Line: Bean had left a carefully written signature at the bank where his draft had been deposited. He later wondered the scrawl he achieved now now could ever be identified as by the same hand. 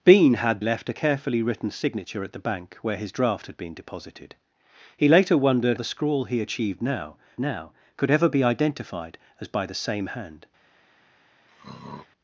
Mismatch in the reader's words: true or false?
false